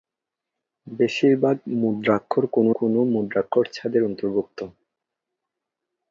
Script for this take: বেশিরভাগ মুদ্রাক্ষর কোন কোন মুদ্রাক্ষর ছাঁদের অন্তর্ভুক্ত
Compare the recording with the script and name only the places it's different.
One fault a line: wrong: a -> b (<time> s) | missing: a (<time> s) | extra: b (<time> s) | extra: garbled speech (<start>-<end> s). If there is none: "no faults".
no faults